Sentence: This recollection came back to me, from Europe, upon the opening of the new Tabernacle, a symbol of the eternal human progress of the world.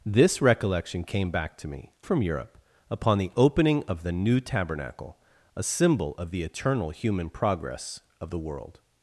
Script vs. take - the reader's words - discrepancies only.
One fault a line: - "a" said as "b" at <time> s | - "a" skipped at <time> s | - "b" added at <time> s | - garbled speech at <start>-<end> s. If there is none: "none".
none